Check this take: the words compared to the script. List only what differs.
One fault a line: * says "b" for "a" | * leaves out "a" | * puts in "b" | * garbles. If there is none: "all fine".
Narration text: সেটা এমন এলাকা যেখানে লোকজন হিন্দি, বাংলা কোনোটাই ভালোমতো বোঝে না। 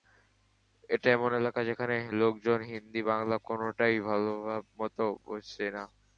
* says "এটা" for "সেটা"